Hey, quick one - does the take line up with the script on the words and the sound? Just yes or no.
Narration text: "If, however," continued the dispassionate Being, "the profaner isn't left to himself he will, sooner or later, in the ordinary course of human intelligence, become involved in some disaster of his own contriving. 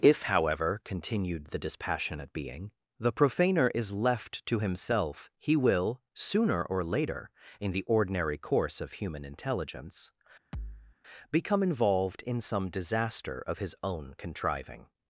no